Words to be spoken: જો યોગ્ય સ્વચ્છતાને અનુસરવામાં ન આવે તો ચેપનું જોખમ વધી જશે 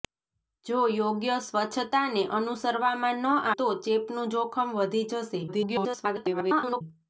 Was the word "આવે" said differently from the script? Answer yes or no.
yes